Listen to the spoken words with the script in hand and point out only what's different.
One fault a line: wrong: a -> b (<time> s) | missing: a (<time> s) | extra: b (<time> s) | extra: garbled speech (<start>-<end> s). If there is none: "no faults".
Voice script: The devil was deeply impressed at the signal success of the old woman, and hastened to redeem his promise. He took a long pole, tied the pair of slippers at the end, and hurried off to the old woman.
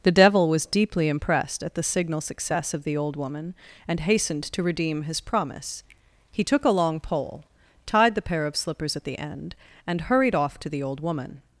no faults